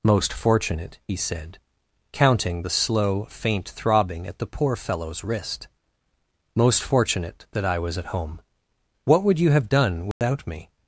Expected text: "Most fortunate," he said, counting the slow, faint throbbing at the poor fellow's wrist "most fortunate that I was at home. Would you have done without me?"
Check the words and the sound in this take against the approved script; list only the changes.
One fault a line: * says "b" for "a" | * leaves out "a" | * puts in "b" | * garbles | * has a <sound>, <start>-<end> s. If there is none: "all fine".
* puts in "What"
* has a dropout, 10.1-10.2 s